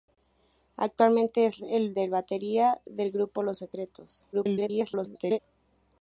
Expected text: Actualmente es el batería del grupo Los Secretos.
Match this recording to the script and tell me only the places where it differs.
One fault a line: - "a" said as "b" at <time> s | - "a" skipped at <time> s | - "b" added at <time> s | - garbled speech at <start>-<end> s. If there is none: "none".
- garbled speech at 4.3-5.4 s